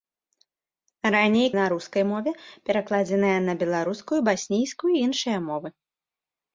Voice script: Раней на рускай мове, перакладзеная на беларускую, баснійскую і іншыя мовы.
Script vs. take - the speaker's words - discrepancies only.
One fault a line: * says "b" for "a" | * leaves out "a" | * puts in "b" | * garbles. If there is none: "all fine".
all fine